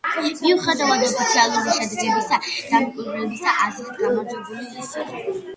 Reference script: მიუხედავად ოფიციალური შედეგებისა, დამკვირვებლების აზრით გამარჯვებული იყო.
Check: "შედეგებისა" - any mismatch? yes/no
no